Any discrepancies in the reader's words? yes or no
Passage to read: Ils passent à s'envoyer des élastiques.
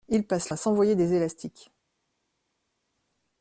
no